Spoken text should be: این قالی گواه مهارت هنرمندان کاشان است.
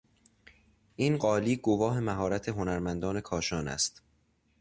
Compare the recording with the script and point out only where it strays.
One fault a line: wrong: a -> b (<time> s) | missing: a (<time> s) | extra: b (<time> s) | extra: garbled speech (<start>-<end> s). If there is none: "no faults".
no faults